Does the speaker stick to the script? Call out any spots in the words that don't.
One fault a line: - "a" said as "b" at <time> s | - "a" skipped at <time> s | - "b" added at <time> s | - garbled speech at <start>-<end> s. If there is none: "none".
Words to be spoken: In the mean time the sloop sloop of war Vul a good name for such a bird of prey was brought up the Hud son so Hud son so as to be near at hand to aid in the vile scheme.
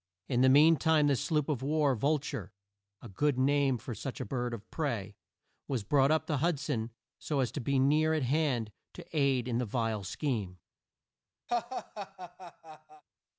- "sloop" skipped at 1.5 s
- "ture" added at 2.2 s
- "Hud son so" skipped at 7.4 s